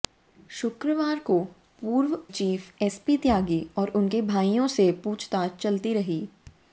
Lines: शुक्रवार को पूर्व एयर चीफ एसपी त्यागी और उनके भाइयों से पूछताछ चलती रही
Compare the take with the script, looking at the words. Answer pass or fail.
fail